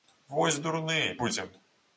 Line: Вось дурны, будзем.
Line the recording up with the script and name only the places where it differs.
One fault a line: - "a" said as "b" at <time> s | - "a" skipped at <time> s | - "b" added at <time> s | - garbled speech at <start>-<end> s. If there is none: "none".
none